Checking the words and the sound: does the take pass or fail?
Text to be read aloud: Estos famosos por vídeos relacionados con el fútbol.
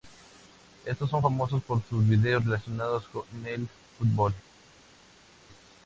fail